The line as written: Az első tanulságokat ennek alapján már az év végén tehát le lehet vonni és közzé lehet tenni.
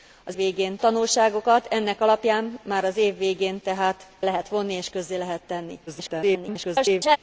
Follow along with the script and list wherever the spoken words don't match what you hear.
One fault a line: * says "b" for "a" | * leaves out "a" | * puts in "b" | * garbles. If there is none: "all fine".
* says "végén" for "első"
* leaves out "le"
* garbles